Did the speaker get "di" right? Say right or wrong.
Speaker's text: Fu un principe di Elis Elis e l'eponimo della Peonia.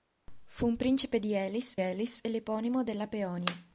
right